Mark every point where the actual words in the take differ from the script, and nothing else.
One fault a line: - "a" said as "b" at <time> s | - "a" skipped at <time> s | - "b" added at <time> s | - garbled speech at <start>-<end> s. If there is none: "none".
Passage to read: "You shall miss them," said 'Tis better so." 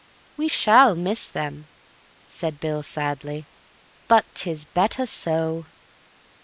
- "You" said as "We" at 0.3 s
- "Bill sadly but" added at 2.6 s